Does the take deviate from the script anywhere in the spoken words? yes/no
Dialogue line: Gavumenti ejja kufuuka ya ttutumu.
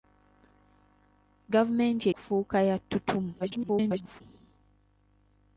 yes